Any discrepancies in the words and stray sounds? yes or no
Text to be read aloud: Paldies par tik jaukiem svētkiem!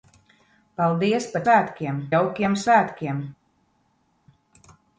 yes